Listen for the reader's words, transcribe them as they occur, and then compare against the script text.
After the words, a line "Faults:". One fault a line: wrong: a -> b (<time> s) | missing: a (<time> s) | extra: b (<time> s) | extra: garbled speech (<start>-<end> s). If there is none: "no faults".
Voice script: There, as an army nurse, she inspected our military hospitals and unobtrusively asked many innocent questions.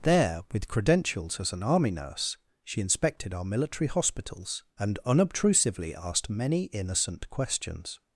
There, with credentials as an army nurse, she inspected our military hospitals and unobtrusively asked many innocent questions.
Faults:
extra: with credentials (0.5 s)